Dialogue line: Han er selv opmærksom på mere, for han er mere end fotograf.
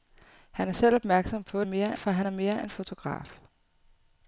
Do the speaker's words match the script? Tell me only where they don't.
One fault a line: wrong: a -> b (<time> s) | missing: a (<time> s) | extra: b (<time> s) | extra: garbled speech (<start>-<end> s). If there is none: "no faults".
no faults